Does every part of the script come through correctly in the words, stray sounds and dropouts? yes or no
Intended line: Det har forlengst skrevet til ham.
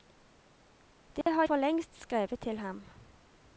no